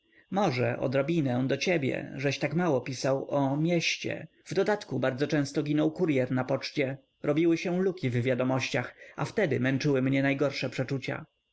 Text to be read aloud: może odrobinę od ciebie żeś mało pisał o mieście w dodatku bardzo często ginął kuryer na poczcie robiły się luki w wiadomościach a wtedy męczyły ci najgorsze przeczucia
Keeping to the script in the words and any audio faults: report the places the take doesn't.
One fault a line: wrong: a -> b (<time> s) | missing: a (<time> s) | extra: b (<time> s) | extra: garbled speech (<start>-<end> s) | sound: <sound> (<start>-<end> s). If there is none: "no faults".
wrong: od -> do (1.5 s)
extra: tak (2.4 s)
wrong: ci -> mnie (10.0 s)